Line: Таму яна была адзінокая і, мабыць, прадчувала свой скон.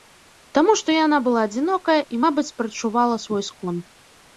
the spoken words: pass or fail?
fail